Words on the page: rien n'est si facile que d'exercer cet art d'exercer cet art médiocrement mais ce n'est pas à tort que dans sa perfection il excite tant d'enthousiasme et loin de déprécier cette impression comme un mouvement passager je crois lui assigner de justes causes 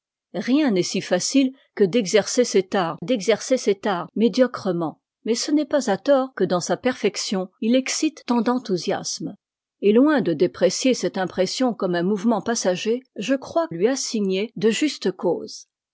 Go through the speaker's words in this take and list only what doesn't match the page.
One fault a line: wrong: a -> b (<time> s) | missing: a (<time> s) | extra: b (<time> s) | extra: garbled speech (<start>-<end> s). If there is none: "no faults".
no faults